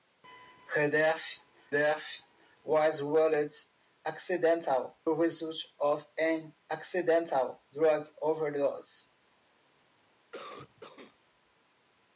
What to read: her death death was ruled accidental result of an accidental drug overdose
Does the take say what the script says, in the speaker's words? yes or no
yes